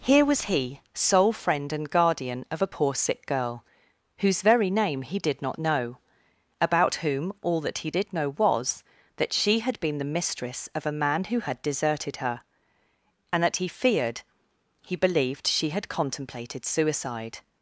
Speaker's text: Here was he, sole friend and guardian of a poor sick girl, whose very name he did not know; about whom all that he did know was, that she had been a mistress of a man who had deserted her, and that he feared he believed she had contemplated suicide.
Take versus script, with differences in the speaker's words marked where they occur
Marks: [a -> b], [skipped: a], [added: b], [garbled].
Here was he, sole friend and guardian of a poor sick girl, whose very name he did not know; about whom all that he did know was, that she had been [a -> the] mistress of a man who had deserted her, and that he feared he believed she had contemplated suicide.